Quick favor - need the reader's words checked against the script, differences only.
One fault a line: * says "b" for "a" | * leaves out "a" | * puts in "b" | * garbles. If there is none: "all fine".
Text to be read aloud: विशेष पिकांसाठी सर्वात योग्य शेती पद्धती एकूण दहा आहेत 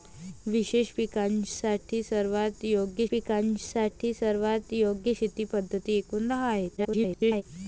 * puts in "पिकांसाठी सर्वात योग्य"
* garbles